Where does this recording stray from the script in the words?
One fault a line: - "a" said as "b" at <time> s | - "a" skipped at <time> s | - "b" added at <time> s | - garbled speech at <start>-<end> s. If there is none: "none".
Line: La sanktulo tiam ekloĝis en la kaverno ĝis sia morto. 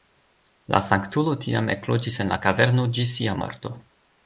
none